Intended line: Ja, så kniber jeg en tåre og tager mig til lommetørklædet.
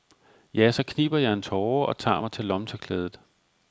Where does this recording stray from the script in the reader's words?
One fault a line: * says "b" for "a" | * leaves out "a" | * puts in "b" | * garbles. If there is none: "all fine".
all fine